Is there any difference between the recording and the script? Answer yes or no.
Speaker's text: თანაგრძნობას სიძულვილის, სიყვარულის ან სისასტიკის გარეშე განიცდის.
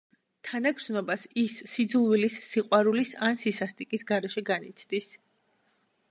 yes